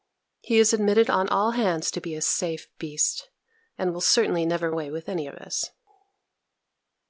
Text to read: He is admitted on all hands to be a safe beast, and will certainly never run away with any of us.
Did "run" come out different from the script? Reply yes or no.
yes